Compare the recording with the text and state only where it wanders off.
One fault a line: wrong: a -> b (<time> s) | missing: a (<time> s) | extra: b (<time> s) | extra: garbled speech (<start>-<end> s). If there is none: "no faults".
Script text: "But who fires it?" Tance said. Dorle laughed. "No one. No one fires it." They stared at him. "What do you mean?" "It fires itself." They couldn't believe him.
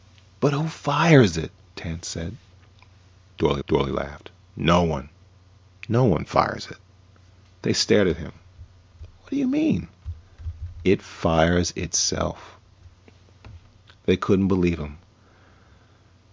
extra: dorle (3.7 s)